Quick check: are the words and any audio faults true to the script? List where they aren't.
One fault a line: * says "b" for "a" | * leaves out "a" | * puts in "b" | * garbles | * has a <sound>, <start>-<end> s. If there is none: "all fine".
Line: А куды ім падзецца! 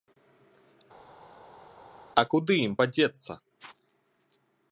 all fine